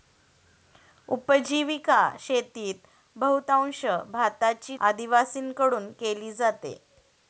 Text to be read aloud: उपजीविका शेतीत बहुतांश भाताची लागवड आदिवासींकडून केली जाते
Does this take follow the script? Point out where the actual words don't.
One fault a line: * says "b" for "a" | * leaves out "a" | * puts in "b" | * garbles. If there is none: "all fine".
* leaves out "लागवड"